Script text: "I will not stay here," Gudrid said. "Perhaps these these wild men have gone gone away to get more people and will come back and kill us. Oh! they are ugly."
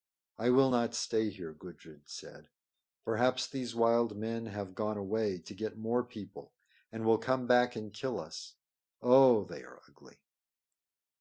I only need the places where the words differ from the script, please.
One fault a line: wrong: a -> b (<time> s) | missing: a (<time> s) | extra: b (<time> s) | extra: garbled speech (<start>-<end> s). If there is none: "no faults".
missing: these (3.8 s)
missing: gone (5.0 s)